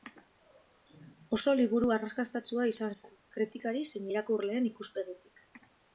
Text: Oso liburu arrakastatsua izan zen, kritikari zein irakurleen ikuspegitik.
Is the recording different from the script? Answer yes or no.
no